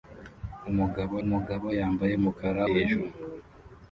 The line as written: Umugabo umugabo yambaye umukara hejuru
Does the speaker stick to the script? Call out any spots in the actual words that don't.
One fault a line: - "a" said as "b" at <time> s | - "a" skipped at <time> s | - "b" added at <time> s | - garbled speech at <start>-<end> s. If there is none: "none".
none